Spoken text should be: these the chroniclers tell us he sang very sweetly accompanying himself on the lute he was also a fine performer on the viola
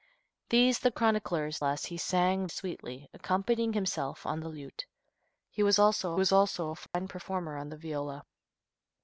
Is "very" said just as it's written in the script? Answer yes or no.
no